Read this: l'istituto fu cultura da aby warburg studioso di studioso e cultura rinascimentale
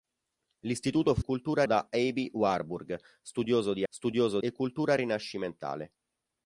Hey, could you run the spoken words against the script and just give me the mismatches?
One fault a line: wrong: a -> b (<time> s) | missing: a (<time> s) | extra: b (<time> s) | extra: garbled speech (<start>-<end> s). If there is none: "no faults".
no faults